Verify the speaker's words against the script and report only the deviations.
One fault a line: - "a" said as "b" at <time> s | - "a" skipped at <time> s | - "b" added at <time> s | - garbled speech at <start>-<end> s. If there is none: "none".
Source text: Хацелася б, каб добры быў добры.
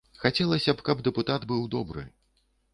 - "добры" said as "дэпутат" at 1.1 s